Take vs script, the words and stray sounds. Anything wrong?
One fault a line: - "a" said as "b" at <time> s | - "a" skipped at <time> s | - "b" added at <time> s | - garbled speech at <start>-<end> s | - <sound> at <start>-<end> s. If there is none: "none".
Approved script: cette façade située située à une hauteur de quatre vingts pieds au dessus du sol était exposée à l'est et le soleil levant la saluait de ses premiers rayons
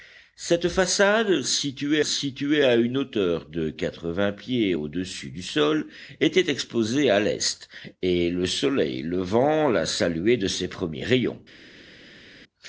none